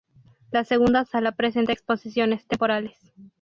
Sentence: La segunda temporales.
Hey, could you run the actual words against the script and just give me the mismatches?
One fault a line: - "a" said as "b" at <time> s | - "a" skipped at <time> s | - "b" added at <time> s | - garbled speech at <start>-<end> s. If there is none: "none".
- "sala presenta exposiciones" added at 1.1 s